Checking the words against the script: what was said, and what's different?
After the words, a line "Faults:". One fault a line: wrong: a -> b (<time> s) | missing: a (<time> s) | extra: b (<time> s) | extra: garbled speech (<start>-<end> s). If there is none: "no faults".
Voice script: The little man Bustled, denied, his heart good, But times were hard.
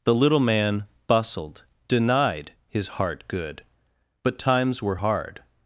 The little man Bustled, denied, his heart good, But times were hard.
Faults:
no faults